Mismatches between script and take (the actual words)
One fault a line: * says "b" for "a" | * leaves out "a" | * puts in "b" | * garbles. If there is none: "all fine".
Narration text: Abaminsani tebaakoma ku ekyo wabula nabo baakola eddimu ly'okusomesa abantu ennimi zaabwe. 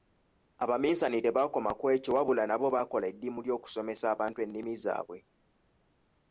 all fine